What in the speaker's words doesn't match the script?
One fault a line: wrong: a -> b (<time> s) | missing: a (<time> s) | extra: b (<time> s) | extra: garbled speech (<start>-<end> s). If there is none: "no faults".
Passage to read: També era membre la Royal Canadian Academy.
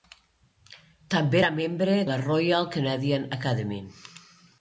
no faults